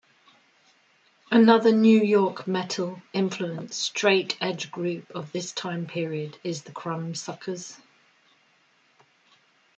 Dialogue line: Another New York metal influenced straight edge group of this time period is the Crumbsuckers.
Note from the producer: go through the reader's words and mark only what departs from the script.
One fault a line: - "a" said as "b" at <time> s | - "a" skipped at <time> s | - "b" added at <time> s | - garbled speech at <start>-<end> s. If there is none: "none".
none